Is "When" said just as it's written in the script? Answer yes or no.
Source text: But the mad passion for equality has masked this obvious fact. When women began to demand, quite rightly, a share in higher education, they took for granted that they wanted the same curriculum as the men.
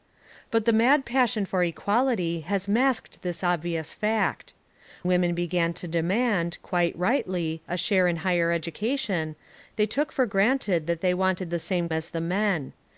no